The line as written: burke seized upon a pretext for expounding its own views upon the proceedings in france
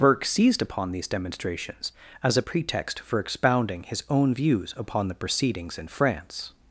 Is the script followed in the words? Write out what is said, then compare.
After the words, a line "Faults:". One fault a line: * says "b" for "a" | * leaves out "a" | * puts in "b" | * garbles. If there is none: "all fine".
burke seized upon these demonstrations as a pretext for expounding his own views upon the proceedings in france
Faults:
* puts in "these demonstrations as"
* says "his" for "its"